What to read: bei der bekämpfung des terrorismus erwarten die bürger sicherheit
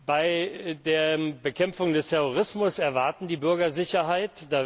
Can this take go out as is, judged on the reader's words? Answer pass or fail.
pass